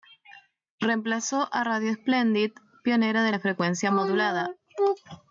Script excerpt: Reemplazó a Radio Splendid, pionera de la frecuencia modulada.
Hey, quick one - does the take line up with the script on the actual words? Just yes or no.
yes